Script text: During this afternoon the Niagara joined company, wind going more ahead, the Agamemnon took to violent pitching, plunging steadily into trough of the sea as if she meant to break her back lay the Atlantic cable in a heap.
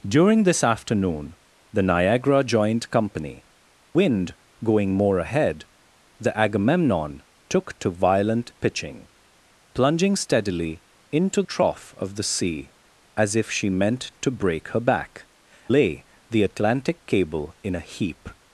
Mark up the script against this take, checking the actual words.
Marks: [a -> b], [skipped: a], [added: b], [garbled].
During this afternoon the Niagara joined company, wind going more ahead, the Agamemnon took to violent pitching, plunging steadily into trough of the sea as if she meant to break her back lay the Atlantic cable in a heap.